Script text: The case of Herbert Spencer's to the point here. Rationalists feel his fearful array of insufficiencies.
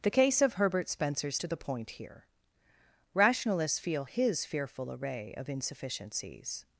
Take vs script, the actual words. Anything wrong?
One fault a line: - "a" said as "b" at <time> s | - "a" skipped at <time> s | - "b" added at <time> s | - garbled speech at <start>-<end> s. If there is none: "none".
none